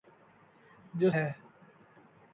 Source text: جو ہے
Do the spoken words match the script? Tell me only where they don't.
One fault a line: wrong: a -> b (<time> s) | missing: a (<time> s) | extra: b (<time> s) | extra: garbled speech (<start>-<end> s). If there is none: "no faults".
no faults